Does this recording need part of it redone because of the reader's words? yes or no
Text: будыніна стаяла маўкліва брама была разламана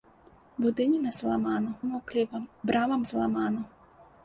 yes